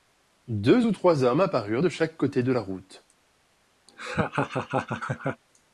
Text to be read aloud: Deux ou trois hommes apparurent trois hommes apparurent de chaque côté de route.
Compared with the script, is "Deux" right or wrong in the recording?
right